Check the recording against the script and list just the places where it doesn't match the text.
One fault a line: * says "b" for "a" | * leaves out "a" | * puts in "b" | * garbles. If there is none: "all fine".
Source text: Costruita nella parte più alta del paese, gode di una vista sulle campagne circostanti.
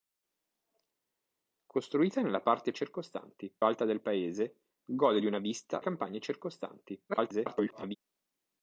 * says "circostanti" for "più"
* leaves out "sulle"
* garbles